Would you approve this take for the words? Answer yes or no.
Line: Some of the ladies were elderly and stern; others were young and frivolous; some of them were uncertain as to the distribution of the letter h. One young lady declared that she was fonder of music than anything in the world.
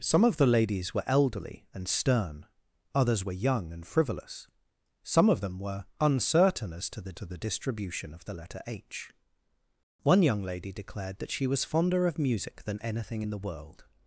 no